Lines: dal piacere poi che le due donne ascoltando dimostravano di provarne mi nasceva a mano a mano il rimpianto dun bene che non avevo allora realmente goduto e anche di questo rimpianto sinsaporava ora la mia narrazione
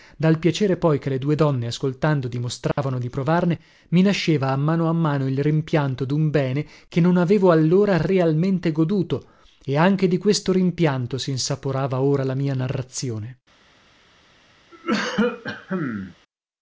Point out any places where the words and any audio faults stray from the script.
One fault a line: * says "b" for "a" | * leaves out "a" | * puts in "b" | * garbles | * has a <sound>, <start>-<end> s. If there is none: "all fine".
* has a dropout, 2.7-2.8 s
* has a cough, 14.7-16.1 s